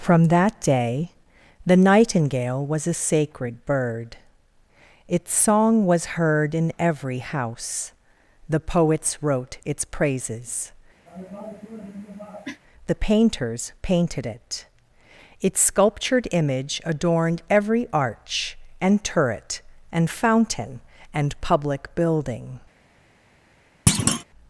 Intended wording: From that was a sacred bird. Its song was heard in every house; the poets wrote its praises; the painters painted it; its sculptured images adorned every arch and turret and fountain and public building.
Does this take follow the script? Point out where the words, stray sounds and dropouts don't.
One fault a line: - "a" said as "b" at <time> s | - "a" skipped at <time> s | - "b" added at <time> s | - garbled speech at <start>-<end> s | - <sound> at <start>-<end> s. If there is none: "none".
- "day the nightingale" added at 0.6 s
- cough at 11.1-12.6 s
- "images" said as "image" at 16.3 s
- thud at 23.9-24.2 s